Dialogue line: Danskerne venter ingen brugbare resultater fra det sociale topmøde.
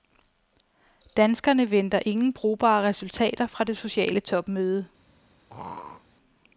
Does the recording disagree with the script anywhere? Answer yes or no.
no